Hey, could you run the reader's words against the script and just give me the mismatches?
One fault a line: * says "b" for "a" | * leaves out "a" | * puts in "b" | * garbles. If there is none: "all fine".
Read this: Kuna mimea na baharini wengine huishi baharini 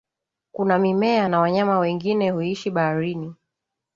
* says "wanyama" for "baharini"